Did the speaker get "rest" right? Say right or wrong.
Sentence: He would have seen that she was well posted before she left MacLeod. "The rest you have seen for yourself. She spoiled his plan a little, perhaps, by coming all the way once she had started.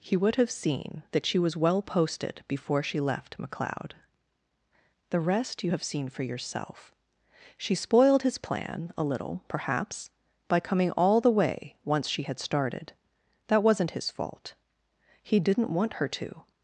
right